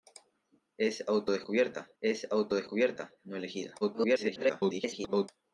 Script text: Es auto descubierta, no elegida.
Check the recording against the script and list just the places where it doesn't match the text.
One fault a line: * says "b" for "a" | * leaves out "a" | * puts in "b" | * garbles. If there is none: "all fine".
* puts in "es auto descubierta"
* garbles